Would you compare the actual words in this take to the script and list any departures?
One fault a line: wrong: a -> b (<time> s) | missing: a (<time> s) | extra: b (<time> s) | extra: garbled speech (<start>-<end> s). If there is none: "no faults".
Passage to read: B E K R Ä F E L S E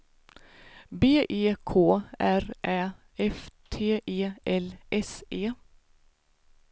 extra: T (3.7 s)